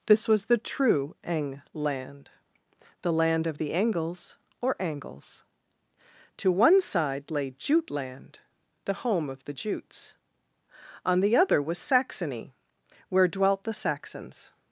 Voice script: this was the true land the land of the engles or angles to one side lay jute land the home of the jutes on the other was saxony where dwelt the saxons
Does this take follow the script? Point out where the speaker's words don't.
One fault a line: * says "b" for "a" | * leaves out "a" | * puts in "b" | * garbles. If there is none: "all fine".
* puts in "eng"